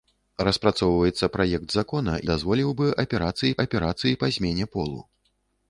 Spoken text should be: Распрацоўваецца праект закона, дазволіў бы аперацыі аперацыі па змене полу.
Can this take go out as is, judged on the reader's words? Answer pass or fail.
pass